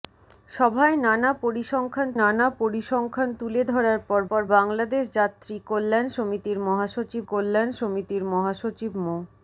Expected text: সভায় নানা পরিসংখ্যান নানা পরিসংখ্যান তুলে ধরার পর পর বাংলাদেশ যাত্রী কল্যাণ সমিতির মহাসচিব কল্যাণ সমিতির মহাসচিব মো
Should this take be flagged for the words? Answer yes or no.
no